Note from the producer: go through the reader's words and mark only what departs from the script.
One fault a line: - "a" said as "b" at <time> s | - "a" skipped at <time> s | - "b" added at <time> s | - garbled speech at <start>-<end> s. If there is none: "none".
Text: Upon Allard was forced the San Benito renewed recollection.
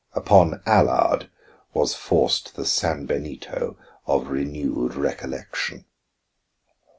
- "of" added at 4.1 s